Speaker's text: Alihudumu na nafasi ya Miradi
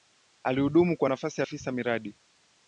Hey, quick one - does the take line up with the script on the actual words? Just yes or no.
no